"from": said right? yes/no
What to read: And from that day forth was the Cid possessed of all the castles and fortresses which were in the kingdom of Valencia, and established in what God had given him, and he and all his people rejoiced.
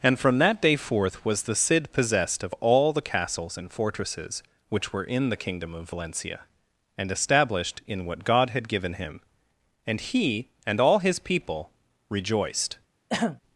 yes